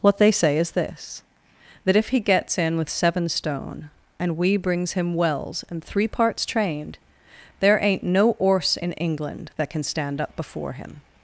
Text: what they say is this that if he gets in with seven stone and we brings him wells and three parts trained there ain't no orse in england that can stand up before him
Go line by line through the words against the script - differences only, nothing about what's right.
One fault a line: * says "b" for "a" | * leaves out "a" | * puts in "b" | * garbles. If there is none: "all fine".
all fine